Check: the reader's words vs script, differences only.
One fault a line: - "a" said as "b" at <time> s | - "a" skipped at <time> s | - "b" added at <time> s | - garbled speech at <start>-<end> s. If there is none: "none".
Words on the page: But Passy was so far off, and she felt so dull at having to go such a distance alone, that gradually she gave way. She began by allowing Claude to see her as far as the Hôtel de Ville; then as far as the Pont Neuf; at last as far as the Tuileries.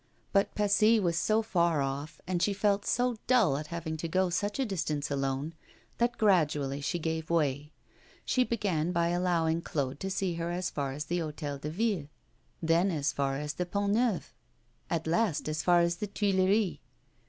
none